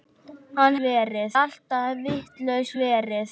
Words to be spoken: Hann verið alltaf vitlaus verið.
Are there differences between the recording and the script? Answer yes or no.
no